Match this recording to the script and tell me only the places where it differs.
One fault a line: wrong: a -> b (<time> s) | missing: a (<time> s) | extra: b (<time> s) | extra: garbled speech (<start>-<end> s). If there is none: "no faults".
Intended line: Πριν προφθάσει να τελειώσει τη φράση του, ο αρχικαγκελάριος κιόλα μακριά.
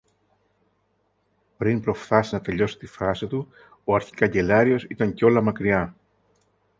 extra: ήταν (4.8 s)